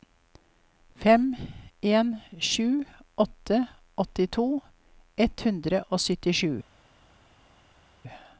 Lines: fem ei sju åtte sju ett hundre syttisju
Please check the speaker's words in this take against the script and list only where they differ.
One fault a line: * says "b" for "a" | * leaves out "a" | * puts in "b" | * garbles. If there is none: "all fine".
* says "en" for "ei"
* says "åttito" for "sju"
* puts in "og"